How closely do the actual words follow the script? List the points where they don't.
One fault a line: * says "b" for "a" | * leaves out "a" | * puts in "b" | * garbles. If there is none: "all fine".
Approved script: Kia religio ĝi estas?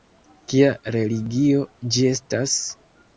all fine